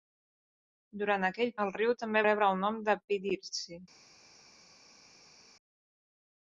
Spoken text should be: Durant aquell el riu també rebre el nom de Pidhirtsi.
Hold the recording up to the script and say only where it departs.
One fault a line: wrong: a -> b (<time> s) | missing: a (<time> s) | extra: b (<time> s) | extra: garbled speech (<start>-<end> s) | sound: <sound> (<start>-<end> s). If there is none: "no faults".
no faults